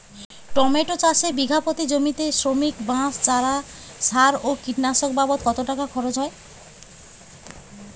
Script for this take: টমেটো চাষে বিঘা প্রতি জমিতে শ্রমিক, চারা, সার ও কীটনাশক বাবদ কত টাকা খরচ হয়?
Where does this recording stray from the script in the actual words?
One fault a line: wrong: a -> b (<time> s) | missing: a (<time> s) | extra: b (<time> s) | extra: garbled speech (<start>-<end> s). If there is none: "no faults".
extra: বাঁশ (2.9 s)